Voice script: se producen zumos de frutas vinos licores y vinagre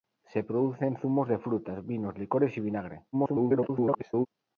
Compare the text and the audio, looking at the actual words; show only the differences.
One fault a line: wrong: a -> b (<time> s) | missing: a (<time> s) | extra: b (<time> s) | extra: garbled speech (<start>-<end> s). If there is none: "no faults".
extra: garbled speech (3.1-4.3 s)